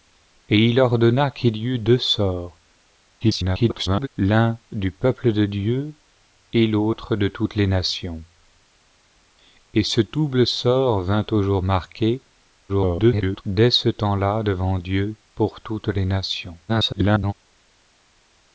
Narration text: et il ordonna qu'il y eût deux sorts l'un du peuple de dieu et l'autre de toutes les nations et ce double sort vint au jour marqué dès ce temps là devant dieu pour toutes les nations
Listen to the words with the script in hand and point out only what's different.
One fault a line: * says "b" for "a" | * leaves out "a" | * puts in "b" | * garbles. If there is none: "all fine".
* garbles
* garbles
* garbles